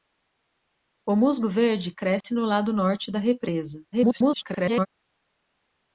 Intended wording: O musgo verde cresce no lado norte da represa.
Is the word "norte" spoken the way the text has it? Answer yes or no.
yes